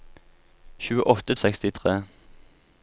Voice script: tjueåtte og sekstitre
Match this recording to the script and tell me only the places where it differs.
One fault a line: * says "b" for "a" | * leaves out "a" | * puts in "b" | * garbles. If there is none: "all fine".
all fine